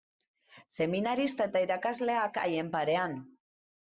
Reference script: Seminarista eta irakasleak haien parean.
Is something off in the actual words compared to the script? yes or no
no